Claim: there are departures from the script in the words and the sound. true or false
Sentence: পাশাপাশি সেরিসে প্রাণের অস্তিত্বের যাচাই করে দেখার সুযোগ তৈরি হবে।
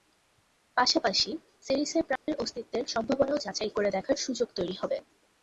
true